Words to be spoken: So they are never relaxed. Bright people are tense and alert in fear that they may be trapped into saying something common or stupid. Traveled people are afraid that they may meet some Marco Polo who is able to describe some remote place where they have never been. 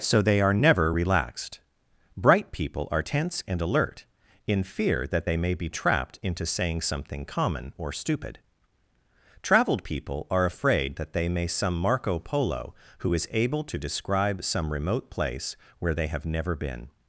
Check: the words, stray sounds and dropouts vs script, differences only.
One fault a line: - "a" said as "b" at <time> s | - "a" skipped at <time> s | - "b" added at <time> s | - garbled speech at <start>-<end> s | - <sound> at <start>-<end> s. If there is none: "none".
- "meet" skipped at 11.5 s